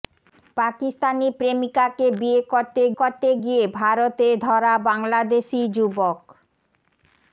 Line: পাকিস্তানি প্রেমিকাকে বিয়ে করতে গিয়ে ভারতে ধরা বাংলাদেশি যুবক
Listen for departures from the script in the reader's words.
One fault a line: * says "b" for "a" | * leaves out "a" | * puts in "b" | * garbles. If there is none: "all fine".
* puts in "করতে"